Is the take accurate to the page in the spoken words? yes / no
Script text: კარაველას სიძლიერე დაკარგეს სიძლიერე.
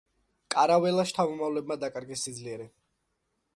no